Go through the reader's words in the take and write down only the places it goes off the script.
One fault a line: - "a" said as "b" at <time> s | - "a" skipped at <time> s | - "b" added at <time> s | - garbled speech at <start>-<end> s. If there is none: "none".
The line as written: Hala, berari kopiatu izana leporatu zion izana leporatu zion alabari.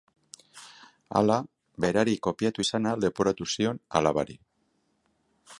- "izana leporatu zion" skipped at 3.8 s